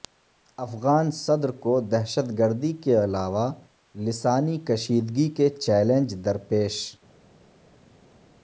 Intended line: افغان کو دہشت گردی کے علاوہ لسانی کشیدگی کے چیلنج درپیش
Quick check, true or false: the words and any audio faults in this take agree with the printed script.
false